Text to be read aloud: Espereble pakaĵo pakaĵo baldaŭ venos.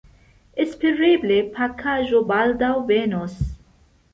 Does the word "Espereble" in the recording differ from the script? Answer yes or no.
no